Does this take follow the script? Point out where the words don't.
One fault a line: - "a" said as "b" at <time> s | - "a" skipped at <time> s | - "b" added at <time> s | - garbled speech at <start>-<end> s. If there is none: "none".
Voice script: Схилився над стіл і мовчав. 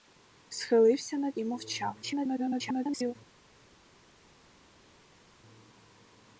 - "стіл" skipped at 1.4 s
- garbled speech at 2.0-3.2 s